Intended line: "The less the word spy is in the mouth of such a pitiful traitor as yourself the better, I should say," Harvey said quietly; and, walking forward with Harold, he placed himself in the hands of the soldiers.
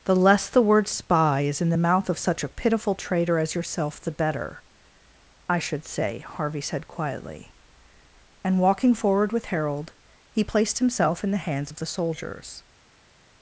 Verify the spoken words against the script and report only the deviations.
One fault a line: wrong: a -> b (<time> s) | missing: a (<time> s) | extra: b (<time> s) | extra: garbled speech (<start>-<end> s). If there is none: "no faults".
no faults